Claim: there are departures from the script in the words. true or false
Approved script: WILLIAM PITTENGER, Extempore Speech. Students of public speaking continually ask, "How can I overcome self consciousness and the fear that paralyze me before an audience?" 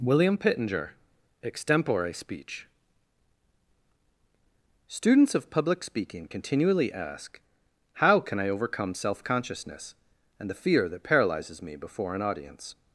true